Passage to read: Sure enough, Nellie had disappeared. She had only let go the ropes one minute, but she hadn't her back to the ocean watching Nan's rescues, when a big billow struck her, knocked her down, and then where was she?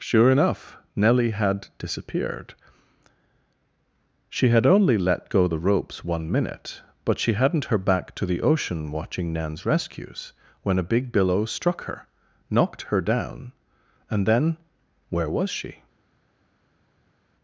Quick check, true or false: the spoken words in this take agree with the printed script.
true